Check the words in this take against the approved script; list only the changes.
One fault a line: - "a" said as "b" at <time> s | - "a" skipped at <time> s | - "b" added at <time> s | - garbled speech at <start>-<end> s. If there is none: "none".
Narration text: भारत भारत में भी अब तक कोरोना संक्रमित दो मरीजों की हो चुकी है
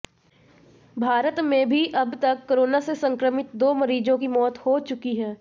- "भारत" skipped at 1.4 s
- "से" added at 2.8 s
- "मौत" added at 4.3 s